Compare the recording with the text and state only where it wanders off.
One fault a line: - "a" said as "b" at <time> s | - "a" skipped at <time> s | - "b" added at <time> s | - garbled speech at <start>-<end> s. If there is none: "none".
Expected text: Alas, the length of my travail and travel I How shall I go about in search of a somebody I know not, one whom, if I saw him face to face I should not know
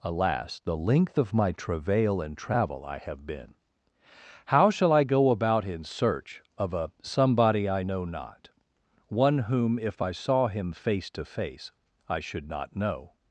- "have been" added at 3.0 s